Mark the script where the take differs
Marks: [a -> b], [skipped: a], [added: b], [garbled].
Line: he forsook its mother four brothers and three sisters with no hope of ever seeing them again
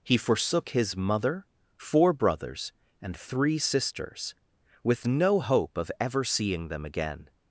he forsook [its -> his] mother four brothers and three sisters with no hope of ever seeing them again